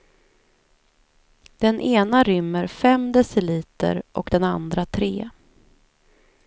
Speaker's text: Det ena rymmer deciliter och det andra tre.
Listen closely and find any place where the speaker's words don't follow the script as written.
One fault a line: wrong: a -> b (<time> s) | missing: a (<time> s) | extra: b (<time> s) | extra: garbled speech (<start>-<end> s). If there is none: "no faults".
wrong: Det -> Den (1.6 s)
extra: fem (2.7 s)
wrong: det -> den (4.3 s)